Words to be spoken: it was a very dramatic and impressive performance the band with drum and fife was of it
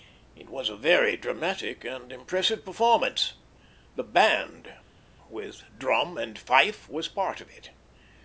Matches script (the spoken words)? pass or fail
fail